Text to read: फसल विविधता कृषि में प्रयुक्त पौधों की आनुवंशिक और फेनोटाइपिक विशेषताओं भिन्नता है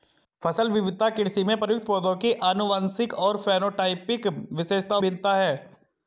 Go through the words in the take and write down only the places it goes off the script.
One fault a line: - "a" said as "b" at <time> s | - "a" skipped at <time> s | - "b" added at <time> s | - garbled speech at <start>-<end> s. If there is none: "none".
none